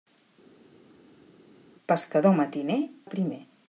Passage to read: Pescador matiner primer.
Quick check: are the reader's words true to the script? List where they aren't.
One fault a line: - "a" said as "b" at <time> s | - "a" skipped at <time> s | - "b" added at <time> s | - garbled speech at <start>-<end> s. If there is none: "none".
none